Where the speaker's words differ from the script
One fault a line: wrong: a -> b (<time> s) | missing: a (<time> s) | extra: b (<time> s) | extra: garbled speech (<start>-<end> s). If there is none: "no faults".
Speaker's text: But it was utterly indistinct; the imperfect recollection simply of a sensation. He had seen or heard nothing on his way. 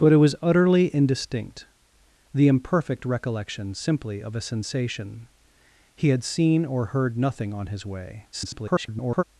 extra: garbled speech (8.3-9.2 s)